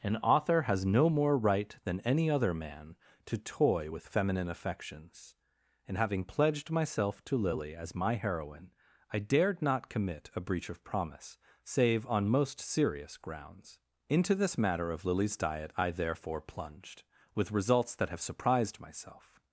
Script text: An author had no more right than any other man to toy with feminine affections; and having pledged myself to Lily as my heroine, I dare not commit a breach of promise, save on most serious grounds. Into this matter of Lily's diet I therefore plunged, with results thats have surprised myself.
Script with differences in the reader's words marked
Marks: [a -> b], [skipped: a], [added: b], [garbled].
An author [had -> has] no more right than any other man to toy with feminine affections; and having pledged myself to Lily as my heroine, I [dare -> dared] not commit a breach of promise, save on most serious grounds. Into this matter of Lily's diet I therefore plunged, with results [thats -> that] have surprised myself.